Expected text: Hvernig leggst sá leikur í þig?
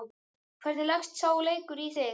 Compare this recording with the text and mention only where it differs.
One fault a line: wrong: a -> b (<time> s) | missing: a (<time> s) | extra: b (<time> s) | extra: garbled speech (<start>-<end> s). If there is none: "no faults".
no faults